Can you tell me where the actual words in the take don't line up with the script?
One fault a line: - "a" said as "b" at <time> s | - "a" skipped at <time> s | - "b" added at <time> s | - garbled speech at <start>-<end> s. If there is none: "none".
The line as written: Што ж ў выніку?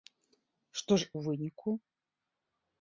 none